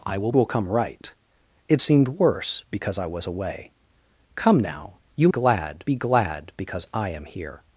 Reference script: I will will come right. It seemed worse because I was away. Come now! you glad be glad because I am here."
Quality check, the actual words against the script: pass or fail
pass